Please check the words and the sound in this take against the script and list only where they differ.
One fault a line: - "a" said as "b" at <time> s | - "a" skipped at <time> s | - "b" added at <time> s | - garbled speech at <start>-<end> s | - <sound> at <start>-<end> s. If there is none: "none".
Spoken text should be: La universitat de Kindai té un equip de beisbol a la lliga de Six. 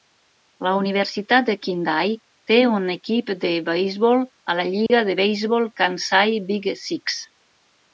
- dropout at 4.9-4.9 s
- "beisbol Kansai Big" added at 5.3 s